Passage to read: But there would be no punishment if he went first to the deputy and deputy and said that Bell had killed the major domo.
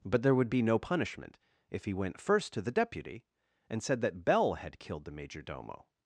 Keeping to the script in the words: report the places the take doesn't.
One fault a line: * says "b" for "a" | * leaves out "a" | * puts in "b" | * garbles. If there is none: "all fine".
* leaves out "deputy and"